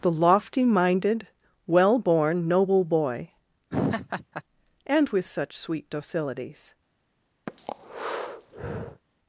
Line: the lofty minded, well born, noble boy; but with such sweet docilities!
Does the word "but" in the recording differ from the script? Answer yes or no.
yes